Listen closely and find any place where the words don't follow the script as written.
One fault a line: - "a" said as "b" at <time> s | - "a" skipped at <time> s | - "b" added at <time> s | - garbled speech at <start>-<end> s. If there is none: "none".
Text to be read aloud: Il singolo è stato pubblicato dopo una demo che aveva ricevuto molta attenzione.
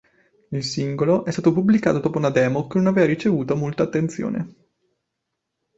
- "non" added at 2.8 s